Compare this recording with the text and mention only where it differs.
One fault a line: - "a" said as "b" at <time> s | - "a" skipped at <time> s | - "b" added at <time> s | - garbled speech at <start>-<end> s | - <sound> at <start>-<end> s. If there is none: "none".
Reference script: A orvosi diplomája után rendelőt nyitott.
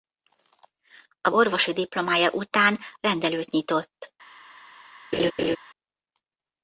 - laugh at 5.1-5.6 s